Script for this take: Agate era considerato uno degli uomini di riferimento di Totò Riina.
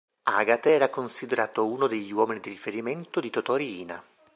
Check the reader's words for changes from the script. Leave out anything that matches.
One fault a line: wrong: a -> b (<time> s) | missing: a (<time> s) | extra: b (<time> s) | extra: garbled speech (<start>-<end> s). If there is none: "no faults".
no faults